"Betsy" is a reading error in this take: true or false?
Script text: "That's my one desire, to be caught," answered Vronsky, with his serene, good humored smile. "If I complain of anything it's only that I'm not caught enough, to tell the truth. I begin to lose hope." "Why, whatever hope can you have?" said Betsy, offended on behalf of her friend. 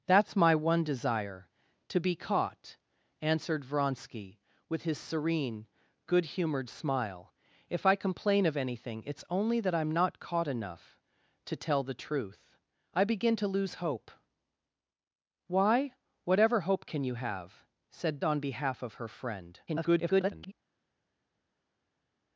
true